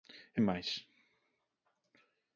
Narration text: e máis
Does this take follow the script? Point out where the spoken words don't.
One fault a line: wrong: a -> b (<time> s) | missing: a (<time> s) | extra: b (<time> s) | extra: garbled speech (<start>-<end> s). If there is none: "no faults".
no faults